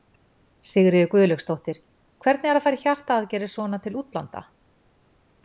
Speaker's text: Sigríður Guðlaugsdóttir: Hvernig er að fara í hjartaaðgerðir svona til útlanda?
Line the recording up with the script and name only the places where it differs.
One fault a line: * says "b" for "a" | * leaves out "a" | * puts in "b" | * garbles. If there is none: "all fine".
all fine